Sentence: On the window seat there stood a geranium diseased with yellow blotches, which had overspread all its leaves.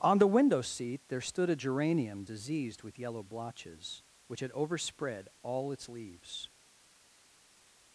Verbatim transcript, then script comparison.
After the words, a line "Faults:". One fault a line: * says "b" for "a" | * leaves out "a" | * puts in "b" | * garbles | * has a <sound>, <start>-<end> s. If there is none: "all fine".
On the window seat there stood a geranium diseased with yellow blotches, which had overspread all its leaves.
Faults:
all fine